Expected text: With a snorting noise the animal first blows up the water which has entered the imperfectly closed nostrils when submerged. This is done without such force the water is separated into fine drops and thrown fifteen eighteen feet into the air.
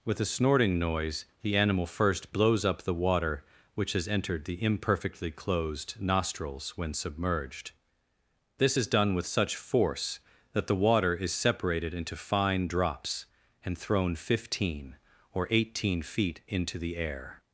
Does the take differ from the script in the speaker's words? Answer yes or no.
yes